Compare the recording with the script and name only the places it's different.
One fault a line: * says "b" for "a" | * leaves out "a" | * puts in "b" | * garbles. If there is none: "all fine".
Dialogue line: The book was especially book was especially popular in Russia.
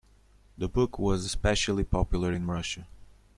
* leaves out "book was especially"